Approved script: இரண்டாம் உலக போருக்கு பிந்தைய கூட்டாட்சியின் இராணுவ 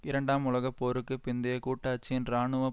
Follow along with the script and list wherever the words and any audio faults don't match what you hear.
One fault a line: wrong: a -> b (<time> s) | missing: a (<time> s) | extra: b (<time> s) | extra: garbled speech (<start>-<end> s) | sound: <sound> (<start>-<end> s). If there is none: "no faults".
no faults